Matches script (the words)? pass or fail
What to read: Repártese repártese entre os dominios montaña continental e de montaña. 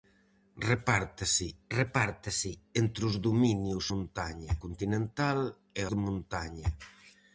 pass